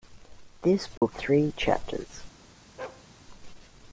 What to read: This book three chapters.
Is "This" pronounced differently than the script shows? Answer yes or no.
no